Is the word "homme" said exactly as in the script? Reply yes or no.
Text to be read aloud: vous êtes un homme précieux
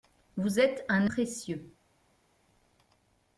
no